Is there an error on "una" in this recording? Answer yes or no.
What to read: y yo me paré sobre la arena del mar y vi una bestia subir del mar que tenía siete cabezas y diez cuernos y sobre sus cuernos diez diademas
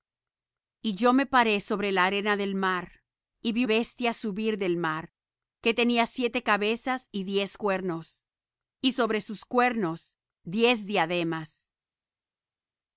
yes